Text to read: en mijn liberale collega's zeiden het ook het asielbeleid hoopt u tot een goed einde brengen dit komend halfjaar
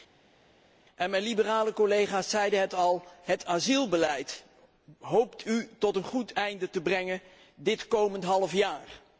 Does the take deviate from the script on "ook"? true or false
true